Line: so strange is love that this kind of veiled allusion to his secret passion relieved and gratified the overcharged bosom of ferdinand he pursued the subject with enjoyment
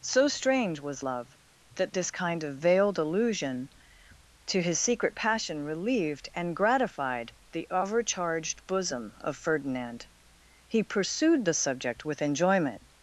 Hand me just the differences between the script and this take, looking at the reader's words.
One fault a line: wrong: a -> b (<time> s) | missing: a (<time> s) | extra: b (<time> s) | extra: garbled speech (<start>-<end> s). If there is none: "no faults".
wrong: is -> was (0.8 s)